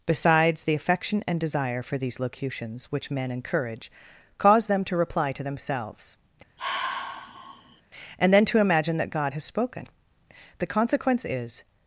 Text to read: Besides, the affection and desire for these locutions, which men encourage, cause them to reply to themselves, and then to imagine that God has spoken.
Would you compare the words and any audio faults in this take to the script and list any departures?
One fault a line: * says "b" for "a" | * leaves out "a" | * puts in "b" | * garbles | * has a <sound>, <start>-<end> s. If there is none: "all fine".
* has a sigh, 6.6-7.8 s
* puts in "The consequence is"